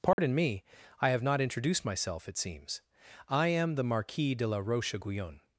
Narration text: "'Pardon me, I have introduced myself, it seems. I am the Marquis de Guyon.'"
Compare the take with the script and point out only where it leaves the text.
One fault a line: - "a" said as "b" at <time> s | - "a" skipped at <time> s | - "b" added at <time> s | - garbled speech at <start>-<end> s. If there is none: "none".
- "not" added at 1.2 s
- "la Roche" added at 4.5 s